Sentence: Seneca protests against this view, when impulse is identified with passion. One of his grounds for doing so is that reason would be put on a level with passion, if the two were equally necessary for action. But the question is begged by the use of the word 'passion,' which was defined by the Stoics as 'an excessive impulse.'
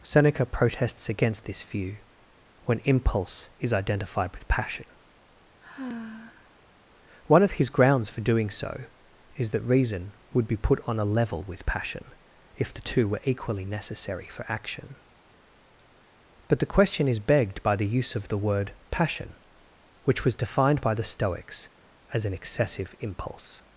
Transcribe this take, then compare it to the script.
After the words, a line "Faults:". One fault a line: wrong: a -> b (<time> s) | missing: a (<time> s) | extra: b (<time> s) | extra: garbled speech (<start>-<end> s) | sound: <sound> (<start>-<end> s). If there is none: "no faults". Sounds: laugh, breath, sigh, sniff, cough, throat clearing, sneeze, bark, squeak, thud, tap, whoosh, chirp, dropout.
Seneca protests against this view, when impulse is identified with passion. One of his grounds for doing so is that reason would be put on a level with passion, if the two were equally necessary for action. But the question is begged by the use of the word 'passion,' which was defined by the Stoics as 'an excessive impulse.'
Faults:
sound: sigh (5.6-6.6 s)